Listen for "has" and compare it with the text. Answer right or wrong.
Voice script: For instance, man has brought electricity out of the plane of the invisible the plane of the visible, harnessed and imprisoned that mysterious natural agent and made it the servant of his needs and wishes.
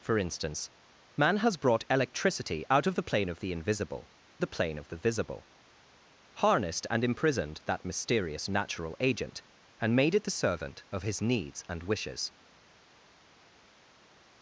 right